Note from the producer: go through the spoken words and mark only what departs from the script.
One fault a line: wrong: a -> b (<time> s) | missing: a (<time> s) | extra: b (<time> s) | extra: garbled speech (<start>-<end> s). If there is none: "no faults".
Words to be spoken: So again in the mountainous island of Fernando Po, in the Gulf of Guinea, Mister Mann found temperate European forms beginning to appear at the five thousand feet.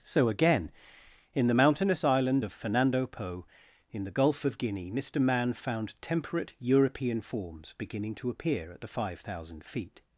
no faults